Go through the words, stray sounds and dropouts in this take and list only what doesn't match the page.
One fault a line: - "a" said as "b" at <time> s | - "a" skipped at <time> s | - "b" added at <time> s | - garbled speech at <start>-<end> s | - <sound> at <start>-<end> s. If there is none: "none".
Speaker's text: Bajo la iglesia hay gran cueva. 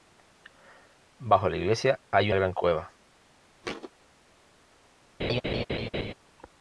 - thud at 3.6-3.9 s
- laugh at 5.2-6.1 s